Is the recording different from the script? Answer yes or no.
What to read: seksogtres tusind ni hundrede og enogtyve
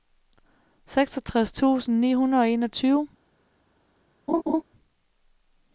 no